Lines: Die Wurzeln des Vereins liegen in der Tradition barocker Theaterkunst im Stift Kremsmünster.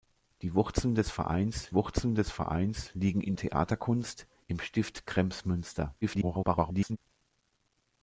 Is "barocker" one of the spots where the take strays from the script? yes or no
yes